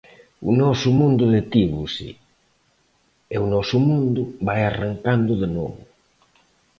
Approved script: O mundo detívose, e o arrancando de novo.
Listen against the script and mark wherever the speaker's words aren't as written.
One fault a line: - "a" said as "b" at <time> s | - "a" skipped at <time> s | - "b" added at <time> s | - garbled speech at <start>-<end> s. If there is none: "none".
- "noso" added at 0.6 s
- "noso mundo vai" added at 3.5 s